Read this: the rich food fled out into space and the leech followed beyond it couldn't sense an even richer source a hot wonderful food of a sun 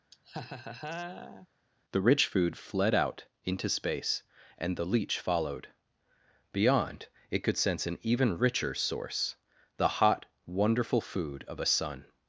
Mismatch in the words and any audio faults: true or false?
true